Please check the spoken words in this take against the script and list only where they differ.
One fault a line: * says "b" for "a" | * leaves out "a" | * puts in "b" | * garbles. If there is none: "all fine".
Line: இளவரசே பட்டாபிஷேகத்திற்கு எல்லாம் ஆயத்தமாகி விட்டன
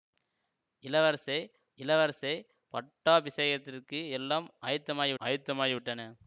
* puts in "இளவரசே"
* puts in "ஆயத்தமாகி"